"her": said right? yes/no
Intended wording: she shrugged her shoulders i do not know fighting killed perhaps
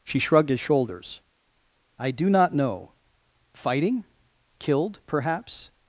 no